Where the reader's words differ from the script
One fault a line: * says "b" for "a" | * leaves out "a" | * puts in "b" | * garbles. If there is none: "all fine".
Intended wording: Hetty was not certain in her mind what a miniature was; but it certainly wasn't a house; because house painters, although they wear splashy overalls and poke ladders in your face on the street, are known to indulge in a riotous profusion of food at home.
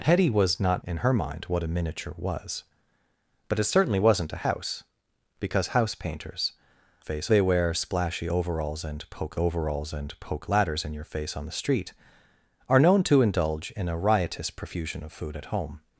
* leaves out "certain"
* says "face" for "although"
* puts in "overalls and poke"